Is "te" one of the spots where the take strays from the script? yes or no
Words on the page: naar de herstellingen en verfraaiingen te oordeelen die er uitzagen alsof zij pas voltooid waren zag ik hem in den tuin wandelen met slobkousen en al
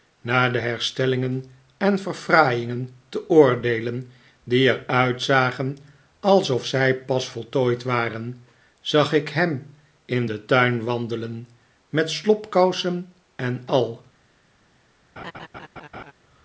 no